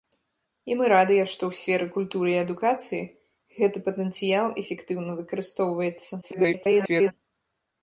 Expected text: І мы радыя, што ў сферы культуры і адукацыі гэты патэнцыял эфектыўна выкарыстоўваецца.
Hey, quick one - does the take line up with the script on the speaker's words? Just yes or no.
no